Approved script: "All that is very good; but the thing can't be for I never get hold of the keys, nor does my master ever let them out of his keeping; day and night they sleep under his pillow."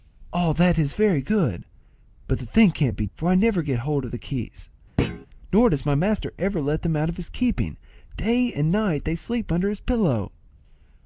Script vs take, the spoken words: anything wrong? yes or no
no